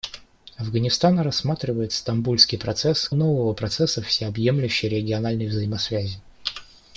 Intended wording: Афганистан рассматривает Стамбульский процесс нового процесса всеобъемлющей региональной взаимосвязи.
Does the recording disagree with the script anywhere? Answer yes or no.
no